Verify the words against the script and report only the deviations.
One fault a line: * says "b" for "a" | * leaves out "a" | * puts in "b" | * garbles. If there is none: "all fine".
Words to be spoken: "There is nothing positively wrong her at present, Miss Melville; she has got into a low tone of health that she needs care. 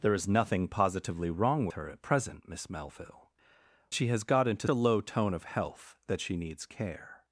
all fine